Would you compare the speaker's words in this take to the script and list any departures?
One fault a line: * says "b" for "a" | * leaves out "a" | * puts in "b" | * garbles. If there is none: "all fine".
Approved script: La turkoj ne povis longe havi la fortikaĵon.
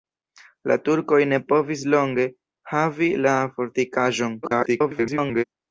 * garbles